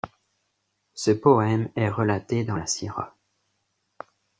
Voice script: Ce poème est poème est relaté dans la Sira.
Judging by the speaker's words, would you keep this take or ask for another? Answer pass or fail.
fail